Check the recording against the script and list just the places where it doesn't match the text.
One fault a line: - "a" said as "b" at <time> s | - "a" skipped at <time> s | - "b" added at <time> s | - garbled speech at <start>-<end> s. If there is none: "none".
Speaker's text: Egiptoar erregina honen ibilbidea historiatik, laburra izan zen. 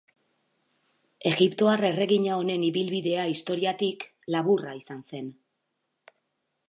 none